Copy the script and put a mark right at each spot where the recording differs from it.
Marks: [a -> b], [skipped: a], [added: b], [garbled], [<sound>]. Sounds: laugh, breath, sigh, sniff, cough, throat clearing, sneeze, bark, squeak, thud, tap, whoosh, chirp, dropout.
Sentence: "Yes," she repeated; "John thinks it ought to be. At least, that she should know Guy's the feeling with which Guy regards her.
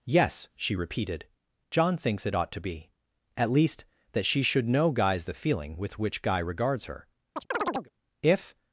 "Yes," she repeated; "John thinks it ought to be. At least, that she should know Guy's the feeling with which Guy regards her. [chirp] [added: If]